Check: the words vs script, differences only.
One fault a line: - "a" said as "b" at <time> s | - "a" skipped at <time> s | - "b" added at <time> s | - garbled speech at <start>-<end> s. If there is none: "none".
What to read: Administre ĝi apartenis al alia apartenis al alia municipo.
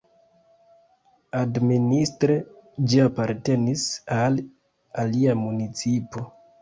- "apartenis al alia" skipped at 5.4 s